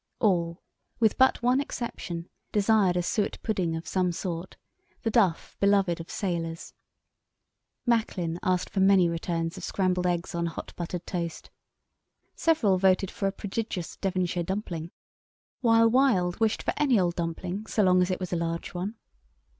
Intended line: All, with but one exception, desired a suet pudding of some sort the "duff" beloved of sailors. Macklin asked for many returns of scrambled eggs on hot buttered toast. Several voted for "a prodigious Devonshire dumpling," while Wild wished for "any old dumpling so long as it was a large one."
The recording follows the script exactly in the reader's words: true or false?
true